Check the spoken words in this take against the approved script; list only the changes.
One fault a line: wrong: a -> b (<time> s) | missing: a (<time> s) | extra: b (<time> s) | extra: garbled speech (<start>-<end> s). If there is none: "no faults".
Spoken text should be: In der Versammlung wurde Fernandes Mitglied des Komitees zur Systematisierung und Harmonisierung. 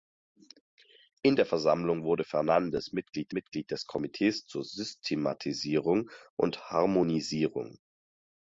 extra: Mitglied (3.3 s)